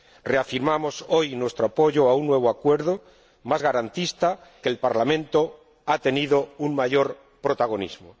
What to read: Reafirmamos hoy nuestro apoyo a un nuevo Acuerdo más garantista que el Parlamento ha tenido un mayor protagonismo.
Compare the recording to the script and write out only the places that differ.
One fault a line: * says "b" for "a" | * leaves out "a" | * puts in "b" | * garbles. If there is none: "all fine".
all fine